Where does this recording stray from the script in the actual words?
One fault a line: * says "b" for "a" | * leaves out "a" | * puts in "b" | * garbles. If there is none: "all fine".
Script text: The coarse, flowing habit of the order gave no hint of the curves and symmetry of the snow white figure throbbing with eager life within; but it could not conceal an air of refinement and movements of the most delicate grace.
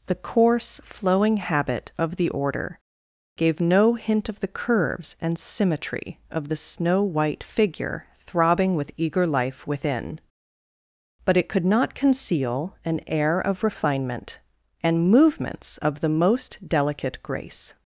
all fine